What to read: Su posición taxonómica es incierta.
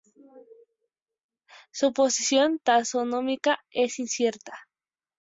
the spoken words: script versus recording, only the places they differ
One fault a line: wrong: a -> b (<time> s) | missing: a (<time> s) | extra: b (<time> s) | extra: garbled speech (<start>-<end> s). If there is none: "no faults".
no faults